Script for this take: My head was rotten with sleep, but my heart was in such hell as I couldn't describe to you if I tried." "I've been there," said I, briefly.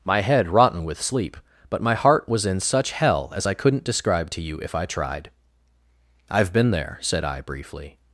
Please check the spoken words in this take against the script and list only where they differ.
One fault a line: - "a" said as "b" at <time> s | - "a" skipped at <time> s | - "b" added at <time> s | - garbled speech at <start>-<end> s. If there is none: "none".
- "was" skipped at 0.5 s